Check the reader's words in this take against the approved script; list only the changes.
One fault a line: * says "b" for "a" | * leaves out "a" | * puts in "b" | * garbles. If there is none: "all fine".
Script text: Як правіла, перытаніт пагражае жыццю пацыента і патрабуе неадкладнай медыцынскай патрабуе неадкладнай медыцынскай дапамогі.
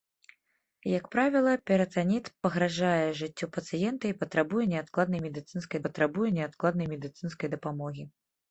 all fine